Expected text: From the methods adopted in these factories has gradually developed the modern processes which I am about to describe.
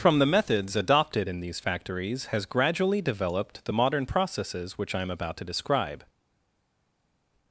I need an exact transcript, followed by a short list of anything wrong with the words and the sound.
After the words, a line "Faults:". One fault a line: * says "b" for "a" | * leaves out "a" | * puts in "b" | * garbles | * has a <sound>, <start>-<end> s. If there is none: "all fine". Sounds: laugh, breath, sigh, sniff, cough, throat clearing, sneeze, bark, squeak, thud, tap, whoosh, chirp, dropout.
From the methods adopted in these factories has gradually developed the modern processes which I am about to describe.
Faults:
all fine